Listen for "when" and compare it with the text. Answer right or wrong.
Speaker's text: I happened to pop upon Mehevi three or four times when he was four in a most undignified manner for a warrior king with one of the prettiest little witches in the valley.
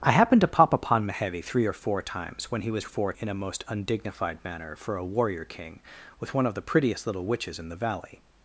right